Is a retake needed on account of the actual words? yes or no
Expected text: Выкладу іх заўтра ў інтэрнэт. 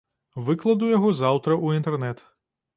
yes